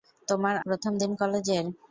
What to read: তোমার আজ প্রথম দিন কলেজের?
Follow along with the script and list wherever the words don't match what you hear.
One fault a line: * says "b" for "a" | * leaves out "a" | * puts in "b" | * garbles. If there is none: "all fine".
* leaves out "আজ"